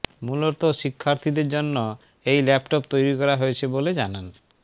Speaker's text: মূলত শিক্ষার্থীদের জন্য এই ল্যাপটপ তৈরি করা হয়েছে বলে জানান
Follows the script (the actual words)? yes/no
yes